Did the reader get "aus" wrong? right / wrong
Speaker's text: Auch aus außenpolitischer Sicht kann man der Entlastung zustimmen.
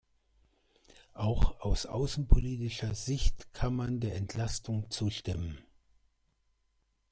right